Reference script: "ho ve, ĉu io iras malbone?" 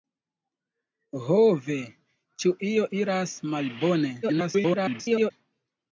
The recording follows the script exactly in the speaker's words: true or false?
false